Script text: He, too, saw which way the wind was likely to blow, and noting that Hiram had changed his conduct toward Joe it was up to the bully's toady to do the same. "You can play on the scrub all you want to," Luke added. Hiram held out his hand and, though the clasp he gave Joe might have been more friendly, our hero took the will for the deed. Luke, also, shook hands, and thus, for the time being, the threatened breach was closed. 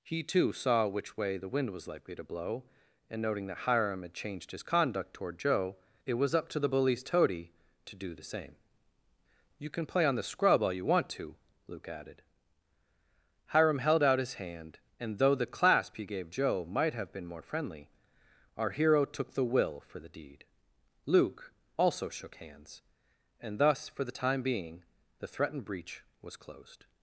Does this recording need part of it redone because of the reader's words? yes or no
no